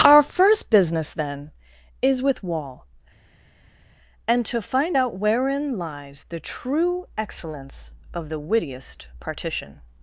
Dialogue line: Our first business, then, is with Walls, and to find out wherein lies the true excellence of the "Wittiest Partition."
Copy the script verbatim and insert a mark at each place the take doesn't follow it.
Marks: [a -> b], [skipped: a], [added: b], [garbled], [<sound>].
Our first business, then, is with [Walls, -> Wall] and to find out wherein lies the true excellence of the "Wittiest Partition."